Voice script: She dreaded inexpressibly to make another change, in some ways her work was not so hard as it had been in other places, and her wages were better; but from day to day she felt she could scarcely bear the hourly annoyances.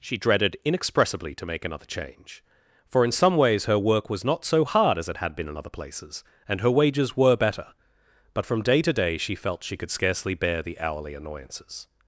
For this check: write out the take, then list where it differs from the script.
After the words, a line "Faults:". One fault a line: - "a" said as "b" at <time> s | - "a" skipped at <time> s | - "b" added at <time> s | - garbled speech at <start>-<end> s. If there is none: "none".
She dreaded inexpressibly to make another change, for in some ways her work was not so hard as it had been in other places, and her wages were better; but from day to day she felt she could scarcely bear the hourly annoyances.
Faults:
- "for" added at 2.9 s